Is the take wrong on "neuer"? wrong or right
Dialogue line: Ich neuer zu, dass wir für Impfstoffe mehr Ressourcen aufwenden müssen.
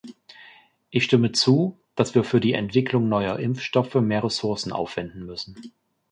wrong